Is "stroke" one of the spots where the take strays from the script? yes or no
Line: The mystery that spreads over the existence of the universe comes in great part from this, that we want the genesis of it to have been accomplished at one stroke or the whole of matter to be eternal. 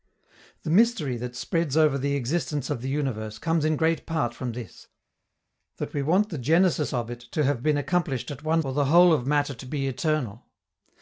yes